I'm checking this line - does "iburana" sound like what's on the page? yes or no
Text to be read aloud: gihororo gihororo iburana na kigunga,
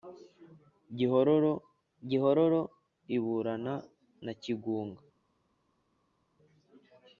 yes